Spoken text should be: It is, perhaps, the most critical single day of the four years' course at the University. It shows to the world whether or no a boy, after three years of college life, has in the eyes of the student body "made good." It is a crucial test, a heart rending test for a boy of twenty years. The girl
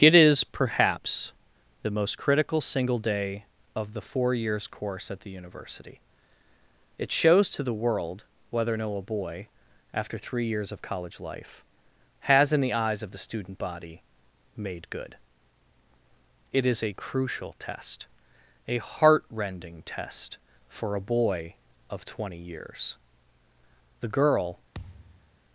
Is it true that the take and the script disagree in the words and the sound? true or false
true